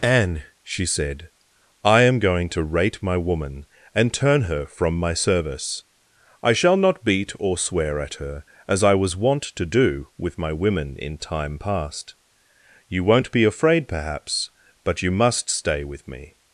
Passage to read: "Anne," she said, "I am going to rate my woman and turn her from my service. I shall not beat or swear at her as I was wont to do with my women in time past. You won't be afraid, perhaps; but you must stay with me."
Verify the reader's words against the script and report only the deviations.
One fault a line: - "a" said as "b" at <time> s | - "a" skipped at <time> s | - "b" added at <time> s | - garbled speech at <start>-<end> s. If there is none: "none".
none